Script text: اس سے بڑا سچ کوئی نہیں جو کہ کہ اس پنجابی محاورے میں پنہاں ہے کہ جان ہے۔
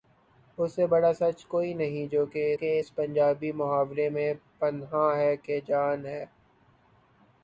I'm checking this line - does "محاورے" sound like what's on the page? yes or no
yes